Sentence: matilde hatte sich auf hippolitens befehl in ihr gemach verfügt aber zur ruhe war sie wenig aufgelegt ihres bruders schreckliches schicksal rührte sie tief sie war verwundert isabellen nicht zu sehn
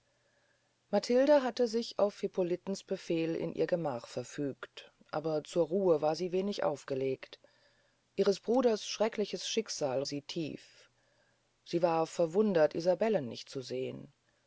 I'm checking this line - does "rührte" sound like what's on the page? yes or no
no